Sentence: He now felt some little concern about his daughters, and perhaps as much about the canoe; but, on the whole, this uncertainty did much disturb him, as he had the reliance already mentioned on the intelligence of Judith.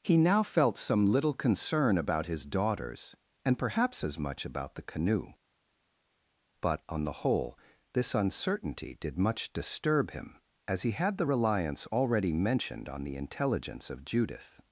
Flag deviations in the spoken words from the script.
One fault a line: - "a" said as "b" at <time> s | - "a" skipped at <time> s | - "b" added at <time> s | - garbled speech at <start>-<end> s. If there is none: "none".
none